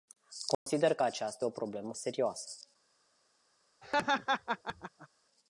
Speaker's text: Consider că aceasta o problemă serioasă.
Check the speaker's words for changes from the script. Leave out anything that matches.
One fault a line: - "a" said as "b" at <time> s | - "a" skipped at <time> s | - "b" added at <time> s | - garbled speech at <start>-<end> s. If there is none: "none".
none